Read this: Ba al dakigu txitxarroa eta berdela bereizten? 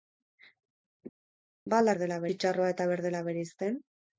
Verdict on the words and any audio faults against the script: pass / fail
fail